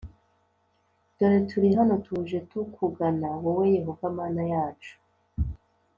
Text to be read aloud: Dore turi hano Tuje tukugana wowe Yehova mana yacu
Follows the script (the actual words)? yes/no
yes